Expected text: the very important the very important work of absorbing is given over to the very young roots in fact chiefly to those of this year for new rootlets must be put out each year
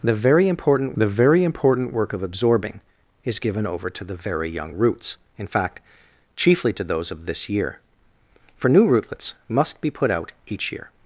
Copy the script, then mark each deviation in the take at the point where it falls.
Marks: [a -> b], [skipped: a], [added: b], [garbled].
the very important the very important work of absorbing is given over to the very young roots in fact chiefly to those of this year for new rootlets must be put out each year